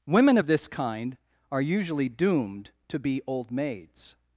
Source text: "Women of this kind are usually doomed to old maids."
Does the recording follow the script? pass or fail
fail